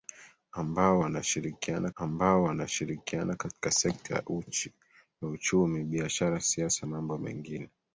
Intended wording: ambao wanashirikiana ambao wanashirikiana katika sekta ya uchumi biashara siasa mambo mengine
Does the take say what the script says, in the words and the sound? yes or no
yes